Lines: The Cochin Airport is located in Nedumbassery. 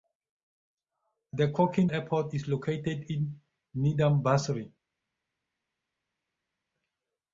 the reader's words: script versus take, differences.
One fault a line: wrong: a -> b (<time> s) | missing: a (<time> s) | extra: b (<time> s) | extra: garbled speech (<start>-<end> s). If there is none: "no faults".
no faults